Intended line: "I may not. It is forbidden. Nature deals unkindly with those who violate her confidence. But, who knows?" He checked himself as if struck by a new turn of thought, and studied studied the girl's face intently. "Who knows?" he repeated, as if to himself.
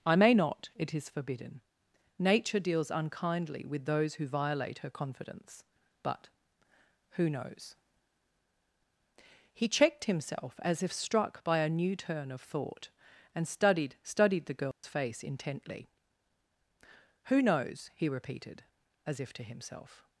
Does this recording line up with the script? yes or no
yes